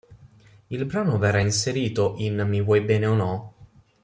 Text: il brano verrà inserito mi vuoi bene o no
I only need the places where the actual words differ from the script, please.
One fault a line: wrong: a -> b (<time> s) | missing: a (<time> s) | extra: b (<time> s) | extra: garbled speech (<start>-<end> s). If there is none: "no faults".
extra: in (2.2 s)